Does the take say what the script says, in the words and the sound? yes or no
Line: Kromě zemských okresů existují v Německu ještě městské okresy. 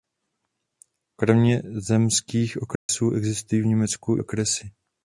no